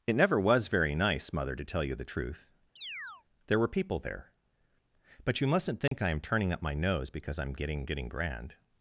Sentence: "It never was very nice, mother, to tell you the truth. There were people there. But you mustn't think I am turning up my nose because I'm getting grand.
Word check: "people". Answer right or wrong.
right